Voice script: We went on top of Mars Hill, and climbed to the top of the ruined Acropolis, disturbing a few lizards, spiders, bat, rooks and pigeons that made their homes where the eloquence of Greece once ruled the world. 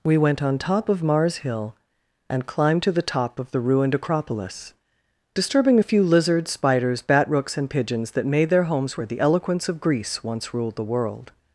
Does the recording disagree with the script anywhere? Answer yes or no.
no